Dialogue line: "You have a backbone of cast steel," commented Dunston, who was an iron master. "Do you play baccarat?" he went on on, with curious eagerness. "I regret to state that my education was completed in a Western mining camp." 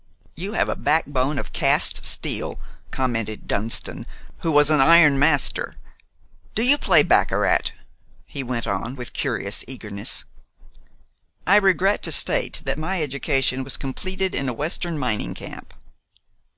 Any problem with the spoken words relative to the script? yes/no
yes